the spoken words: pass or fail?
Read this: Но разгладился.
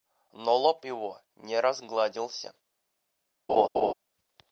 fail